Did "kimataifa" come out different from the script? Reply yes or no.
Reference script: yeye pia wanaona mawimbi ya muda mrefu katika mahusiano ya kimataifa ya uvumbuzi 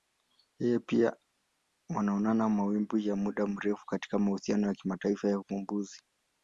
no